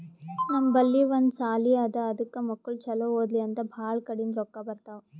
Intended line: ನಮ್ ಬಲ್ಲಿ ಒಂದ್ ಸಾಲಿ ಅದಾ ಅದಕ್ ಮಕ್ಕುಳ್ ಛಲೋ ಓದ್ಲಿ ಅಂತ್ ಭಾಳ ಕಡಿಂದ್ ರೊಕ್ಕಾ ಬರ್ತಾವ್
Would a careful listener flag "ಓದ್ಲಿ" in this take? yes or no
no